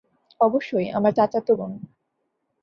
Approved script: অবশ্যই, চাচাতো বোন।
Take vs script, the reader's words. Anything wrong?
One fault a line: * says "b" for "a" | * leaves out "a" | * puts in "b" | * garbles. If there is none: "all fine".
* puts in "আমার"